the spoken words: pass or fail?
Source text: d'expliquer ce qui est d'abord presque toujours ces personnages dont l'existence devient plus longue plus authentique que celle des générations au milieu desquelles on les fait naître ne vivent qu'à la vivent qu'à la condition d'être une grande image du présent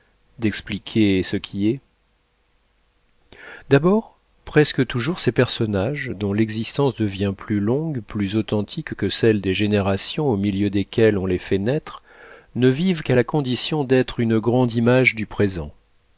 fail